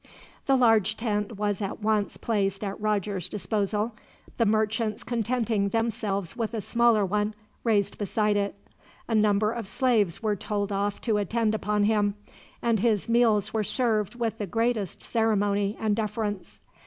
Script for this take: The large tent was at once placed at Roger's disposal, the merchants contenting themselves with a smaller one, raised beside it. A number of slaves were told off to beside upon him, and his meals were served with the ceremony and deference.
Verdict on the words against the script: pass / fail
fail